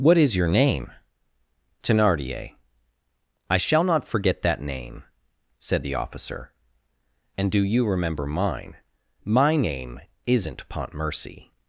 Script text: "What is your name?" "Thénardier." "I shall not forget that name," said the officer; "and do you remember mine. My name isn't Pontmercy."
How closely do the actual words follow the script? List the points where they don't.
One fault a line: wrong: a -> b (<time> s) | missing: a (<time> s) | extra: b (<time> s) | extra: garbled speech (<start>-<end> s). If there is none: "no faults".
no faults